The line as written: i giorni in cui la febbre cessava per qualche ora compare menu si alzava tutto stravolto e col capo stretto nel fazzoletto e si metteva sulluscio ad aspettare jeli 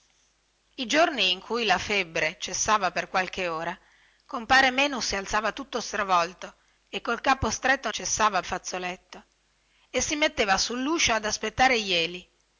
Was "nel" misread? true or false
true